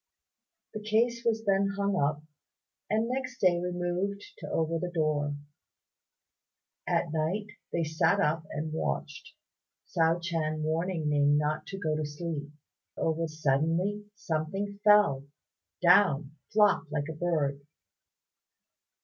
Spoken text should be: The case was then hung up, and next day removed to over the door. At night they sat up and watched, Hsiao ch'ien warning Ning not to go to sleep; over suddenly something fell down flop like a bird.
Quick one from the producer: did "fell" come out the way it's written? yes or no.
yes